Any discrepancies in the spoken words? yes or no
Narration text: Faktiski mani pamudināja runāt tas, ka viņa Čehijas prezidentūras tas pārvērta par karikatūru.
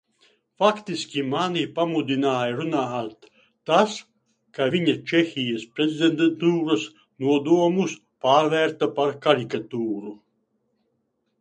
yes